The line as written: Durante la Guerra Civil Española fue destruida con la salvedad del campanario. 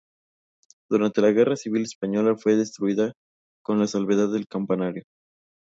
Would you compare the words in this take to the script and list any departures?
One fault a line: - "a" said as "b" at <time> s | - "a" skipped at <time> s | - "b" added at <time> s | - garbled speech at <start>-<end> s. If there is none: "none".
none